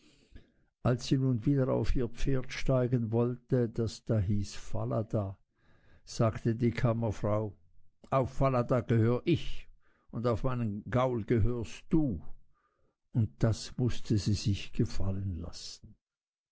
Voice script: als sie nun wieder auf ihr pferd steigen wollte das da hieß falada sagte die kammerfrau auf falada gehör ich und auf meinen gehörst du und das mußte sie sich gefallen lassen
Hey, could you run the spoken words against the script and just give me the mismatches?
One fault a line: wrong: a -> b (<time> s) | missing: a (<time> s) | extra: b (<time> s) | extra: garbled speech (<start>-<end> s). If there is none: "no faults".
extra: gaul (10.9 s)